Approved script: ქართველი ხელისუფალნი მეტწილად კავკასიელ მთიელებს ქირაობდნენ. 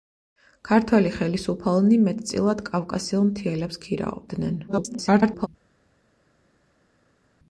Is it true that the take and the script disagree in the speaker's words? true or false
true